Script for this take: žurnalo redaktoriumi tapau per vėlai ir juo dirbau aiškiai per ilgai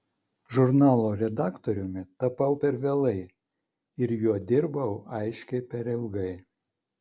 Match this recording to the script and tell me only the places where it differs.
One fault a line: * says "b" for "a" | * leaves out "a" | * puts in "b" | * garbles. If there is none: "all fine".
all fine